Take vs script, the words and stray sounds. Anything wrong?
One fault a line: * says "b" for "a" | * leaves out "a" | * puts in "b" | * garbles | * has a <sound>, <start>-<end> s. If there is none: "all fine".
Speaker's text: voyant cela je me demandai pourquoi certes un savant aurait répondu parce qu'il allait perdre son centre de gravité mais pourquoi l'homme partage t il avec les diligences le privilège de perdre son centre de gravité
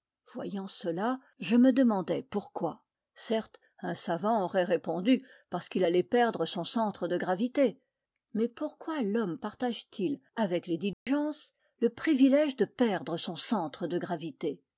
* has a dropout, 10.9-11.1 s